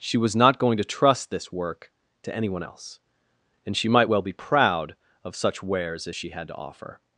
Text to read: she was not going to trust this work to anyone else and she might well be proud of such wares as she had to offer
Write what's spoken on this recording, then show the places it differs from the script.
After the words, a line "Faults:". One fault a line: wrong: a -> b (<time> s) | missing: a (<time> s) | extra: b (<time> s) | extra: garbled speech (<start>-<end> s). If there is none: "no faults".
she was not going to trust this work to anyone else and she might well be proud of such wares as she had to offer
Faults:
no faults